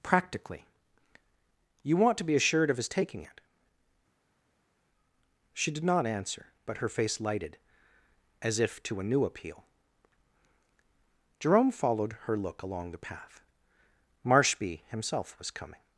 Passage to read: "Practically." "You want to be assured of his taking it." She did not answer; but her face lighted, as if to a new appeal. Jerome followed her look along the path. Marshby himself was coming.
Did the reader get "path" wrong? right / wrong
right